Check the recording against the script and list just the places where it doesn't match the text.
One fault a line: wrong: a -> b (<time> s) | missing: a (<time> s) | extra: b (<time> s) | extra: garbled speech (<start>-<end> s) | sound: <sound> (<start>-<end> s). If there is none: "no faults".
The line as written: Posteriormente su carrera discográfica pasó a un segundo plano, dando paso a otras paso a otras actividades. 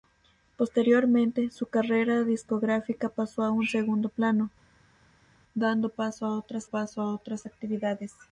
no faults